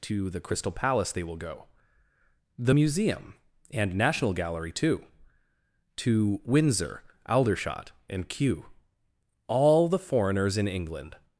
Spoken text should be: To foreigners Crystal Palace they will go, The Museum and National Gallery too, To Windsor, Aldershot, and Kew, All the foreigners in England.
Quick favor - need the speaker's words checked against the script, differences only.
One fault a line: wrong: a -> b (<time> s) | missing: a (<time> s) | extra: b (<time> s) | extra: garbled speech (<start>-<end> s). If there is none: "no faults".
wrong: foreigners -> the (0.3 s)